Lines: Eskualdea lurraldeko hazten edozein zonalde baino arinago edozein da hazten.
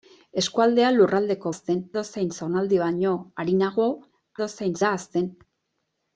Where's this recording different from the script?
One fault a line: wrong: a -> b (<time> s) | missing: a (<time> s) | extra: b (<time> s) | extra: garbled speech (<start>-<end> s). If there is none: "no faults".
no faults